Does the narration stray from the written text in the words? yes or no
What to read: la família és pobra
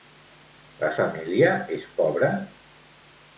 no